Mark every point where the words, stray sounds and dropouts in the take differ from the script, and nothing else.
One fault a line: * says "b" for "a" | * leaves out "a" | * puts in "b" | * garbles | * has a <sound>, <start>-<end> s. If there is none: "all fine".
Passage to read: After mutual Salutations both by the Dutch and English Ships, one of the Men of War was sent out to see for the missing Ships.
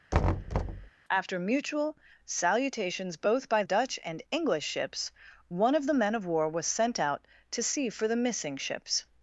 * has a thud, 0.1-0.9 s
* leaves out "the"